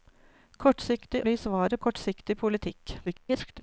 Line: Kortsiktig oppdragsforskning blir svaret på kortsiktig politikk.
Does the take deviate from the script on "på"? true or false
true